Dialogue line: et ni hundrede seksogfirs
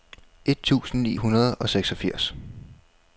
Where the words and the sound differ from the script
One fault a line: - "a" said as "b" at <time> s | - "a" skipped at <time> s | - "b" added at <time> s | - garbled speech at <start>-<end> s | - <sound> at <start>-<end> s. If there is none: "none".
- "tusind" added at 0.6 s
- "og" added at 1.5 s